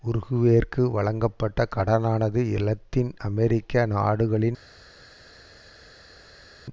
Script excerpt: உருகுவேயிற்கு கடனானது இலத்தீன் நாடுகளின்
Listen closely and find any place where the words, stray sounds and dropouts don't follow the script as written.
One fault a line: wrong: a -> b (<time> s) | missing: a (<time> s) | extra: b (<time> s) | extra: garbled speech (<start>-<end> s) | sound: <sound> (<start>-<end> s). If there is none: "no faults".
extra: வழங்கப்பட்ட (0.9 s)
extra: அமெரிக்க (3.2 s)